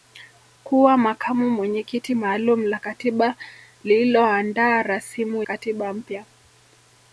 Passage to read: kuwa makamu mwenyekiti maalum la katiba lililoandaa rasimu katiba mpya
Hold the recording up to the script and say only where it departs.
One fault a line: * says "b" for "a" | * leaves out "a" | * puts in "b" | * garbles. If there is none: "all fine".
all fine